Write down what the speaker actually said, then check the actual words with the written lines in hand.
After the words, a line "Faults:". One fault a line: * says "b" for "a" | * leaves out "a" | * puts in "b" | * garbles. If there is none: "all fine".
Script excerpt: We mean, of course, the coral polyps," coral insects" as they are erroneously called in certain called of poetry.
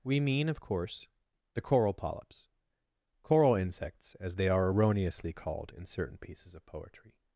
We mean, of course, the coral polyps," coral insects" as they are erroneously called in certain pieces of poetry.
Faults:
* says "pieces" for "called"